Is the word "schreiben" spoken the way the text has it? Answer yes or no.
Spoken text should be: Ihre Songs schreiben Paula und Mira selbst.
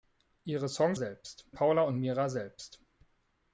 no